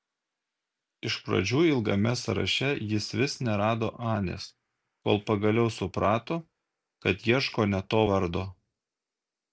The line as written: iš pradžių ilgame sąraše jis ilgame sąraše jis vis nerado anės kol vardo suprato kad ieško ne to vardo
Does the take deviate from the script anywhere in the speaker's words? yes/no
yes